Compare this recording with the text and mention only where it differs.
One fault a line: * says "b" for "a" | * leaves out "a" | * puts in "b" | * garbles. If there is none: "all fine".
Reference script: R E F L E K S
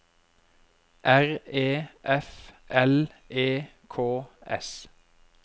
all fine